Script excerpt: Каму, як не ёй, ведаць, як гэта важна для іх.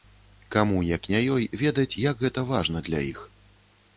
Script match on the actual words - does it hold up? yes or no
yes